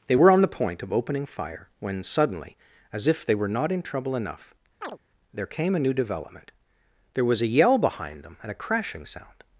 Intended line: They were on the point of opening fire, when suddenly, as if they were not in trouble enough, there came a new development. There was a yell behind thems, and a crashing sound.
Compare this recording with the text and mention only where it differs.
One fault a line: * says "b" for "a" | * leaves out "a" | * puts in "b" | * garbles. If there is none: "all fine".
* says "them" for "thems"